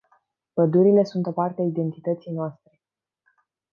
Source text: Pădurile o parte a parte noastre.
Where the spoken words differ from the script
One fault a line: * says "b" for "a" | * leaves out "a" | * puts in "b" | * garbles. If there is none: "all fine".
* puts in "sunt"
* says "identității" for "parte"